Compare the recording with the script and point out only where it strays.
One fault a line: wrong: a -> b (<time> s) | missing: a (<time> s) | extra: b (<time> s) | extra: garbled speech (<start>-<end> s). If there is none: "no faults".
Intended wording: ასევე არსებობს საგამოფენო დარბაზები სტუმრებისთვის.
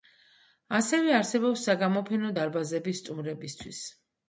no faults